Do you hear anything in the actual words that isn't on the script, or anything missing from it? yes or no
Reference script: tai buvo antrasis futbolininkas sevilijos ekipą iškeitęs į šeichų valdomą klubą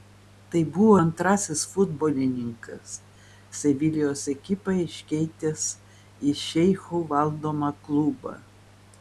no